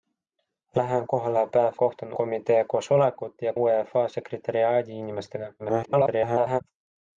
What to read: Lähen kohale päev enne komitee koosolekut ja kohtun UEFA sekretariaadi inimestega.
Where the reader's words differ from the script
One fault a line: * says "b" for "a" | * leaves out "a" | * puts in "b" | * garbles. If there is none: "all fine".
* says "kohtun" for "enne"
* leaves out "kohtun"
* garbles